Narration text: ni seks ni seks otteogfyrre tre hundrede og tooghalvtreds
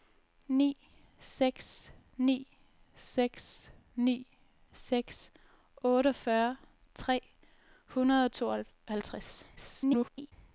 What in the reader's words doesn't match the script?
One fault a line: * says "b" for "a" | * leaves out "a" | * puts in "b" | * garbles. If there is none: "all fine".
* puts in "ni seks"
* garbles